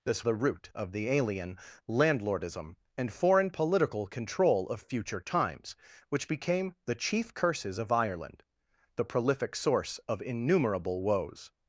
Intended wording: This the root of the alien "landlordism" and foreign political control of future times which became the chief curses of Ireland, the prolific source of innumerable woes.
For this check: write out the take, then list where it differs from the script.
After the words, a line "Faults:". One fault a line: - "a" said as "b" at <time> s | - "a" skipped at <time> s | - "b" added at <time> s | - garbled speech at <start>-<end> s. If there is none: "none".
This the root of the alien "landlordism" and foreign political control of future times which became the chief curses of Ireland, the prolific source of innumerable woes.
Faults:
none